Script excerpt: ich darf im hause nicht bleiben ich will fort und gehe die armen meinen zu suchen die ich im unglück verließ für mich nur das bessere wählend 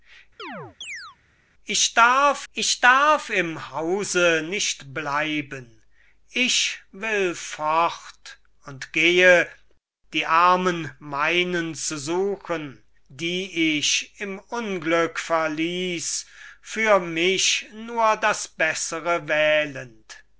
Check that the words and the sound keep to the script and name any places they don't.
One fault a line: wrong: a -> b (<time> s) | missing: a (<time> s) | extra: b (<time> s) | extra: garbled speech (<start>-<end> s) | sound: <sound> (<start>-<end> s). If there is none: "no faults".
sound: chirp (0.4-1.2 s)
extra: ich darf (2.5 s)